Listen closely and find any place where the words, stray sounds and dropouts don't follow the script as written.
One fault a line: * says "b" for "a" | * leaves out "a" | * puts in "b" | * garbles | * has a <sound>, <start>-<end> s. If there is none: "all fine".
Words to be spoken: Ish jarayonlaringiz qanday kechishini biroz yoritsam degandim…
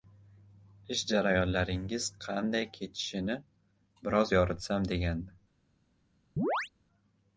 * has a chirp, 6.4-6.7 s